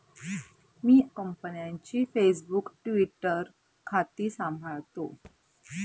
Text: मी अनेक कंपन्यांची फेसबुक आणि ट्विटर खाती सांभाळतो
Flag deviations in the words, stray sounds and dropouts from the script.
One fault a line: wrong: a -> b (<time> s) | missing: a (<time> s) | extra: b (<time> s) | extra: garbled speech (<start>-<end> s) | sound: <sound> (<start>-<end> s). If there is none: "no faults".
missing: अनेक (1.0 s)
missing: आणि (2.7 s)
sound: thud (5.2-5.4 s)